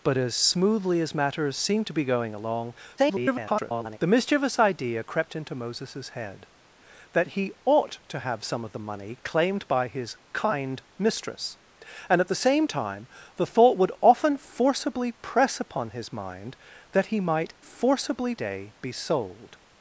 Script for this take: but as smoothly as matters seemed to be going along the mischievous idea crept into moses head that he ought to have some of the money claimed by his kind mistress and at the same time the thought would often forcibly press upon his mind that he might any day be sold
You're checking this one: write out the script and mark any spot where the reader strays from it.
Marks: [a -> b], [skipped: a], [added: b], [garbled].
but as smoothly as matters seemed to be going along [garbled] the mischievous idea crept into moses head that he ought to have some of the money claimed by his kind mistress and at the same time the thought would often forcibly press upon his mind that he might [any -> forcibly] day be sold